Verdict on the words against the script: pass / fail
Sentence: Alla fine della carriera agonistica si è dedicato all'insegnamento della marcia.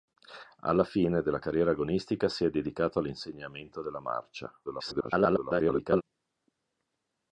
fail